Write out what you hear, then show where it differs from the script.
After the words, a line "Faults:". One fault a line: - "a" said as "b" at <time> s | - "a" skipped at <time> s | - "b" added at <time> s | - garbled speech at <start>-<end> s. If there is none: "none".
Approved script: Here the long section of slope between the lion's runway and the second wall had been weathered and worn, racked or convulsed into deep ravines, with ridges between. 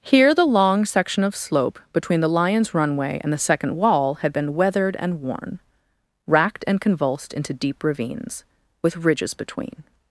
Here the long section of slope between the lion's runway and the second wall had been weathered and worn, racked and convulsed into deep ravines, with ridges between.
Faults:
- "or" said as "and" at 6.7 s